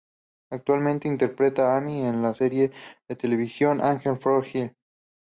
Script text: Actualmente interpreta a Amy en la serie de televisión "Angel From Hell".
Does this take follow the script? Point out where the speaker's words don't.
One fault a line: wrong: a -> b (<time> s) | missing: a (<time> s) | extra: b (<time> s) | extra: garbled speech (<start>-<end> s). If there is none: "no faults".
no faults